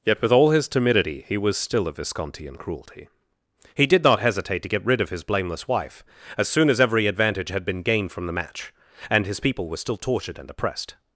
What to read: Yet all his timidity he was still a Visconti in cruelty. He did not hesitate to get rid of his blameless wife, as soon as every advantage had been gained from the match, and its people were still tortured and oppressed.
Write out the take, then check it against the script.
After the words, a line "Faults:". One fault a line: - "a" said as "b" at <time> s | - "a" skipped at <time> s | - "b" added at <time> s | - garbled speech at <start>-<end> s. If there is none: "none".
Yet with all his timidity he was still a Visconti in cruelty. He did not hesitate to get rid of his blameless wife, as soon as every advantage had been gained from the match, and his people were still tortured and oppressed.
Faults:
- "with" added at 0.2 s
- "its" said as "his" at 9.2 s